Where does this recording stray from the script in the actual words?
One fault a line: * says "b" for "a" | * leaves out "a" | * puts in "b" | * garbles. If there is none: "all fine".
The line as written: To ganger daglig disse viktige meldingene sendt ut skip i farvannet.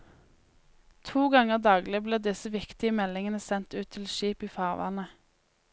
* puts in "blir"
* puts in "til"